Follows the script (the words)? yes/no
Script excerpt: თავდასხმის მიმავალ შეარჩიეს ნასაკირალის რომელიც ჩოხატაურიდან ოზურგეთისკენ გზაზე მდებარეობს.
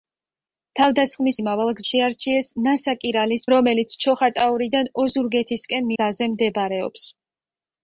yes